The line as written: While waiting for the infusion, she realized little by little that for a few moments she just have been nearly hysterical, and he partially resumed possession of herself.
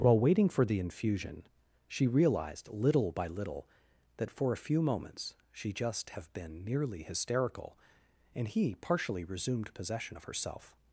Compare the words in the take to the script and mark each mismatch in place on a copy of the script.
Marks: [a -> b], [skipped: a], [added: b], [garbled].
While waiting for the infusion, she realized little by little that for a few moments she just have been nearly hysterical, and he partially resumed possession of herself.